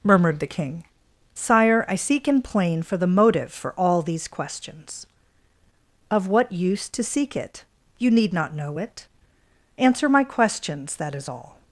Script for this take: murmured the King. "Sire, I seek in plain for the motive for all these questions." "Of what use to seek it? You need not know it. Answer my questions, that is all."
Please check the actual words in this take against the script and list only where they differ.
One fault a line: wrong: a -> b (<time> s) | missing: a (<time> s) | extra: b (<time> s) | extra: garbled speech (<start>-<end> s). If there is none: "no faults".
no faults